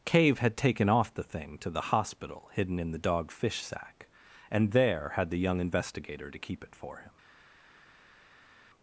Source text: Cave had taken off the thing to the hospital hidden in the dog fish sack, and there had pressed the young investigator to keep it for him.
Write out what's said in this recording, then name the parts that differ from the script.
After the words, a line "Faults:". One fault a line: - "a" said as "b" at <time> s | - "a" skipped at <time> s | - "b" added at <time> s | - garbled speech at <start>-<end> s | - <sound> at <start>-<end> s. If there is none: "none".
Cave had taken off the thing to the hospital hidden in the dog fish sack, and there had the young investigator to keep it for him.
Faults:
- "pressed" skipped at 5.3 s